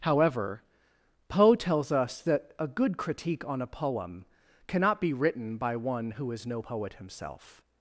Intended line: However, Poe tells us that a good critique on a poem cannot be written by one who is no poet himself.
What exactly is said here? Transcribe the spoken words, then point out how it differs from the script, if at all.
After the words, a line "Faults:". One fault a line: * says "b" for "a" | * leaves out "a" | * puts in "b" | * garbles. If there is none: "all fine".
However, Poe tells us that a good critique on a poem cannot be written by one who is no poet himself.
Faults:
all fine